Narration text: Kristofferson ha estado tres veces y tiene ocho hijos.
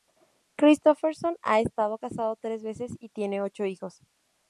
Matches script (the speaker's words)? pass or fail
fail